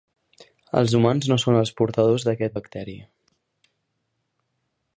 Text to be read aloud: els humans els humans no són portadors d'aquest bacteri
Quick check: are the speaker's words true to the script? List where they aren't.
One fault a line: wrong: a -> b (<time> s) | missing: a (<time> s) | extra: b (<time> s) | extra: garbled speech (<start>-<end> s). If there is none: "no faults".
missing: els humans (1.3 s)
extra: els (1.6 s)